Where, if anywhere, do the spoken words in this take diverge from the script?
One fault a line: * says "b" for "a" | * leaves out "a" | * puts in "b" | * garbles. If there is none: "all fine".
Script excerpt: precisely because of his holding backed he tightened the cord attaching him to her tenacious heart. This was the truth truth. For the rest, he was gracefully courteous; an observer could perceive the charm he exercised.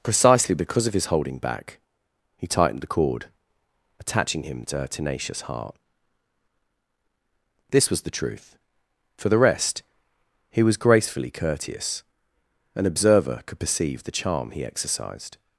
* says "back" for "backed"
* leaves out "truth"